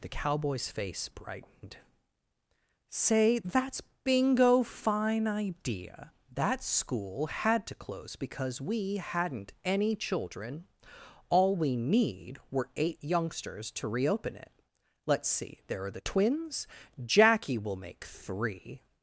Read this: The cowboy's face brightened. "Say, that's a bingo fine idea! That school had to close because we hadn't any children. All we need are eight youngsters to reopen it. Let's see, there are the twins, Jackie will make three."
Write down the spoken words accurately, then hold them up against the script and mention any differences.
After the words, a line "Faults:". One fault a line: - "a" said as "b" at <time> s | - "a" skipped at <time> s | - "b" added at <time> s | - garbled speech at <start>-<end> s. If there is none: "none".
The cowboy's face brightened. "Say, that's bingo fine idea! That school had to close because we hadn't any children. All we need were eight youngsters to reopen it. Let's see, there are the twins, Jackie will make three."
Faults:
- "a" skipped at 3.8 s
- "are" said as "were" at 12.5 s